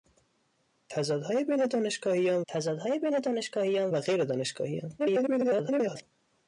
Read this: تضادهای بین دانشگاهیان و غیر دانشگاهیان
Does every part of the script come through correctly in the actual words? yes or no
no